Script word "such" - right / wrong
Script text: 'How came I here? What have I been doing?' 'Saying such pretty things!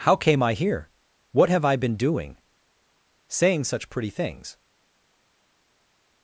right